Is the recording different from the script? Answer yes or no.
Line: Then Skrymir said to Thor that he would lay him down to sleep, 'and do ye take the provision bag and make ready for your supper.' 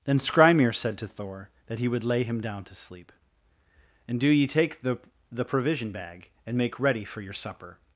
yes